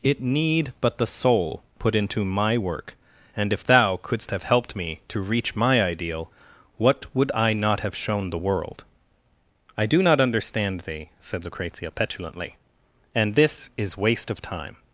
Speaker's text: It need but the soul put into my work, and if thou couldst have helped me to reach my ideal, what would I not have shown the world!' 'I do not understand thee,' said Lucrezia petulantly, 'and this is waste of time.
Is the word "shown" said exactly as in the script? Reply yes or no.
yes